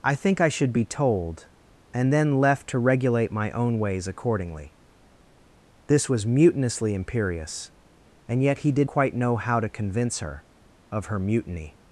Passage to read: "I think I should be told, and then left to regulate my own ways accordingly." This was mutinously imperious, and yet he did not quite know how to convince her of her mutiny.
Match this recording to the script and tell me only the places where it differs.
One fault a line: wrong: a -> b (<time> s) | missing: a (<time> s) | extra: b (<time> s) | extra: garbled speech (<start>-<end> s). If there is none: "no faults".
missing: not (8.9 s)